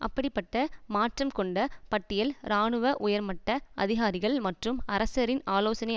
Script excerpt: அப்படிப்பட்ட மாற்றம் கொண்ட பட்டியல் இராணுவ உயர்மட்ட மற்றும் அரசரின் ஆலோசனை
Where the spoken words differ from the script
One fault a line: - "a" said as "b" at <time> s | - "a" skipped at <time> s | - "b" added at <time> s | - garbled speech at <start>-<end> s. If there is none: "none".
- "அதிகாரிகள்" added at 3.8 s